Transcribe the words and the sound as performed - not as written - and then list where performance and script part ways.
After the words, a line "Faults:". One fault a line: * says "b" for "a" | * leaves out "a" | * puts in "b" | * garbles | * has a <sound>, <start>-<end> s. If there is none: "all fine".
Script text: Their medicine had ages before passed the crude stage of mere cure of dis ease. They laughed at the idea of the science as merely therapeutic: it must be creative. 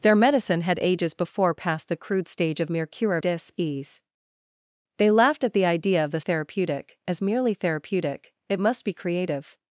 Their medicine had ages before passed the crude stage of mere cure dis ease. They laughed at the idea of the therapeutic as merely therapeutic: it must be creative.
Faults:
* leaves out "of"
* says "therapeutic" for "science"